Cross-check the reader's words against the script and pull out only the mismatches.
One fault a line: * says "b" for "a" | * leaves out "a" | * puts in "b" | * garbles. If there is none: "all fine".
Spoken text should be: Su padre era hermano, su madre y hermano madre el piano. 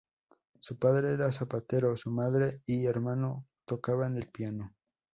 * says "zapatero" for "hermano"
* says "tocaban" for "madre"